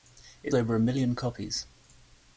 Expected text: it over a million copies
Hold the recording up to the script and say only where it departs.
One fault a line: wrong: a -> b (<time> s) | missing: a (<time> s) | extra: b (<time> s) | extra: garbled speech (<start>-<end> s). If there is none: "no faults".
no faults